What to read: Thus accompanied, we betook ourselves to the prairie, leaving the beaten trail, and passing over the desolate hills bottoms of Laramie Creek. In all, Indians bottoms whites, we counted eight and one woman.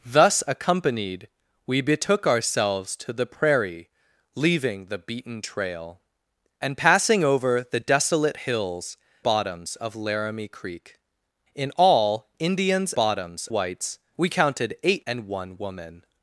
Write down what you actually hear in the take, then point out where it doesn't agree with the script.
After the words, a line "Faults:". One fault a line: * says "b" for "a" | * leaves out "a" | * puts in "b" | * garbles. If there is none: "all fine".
Thus accompanied, we betook ourselves to the prairie, leaving the beaten trail, and passing over the desolate hills bottoms of Laramie Creek. In all, Indians bottoms whites, we counted eight and one woman.
Faults:
all fine